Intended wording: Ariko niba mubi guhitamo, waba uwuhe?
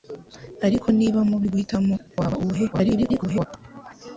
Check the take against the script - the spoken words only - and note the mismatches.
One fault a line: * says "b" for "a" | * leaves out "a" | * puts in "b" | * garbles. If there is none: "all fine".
* garbles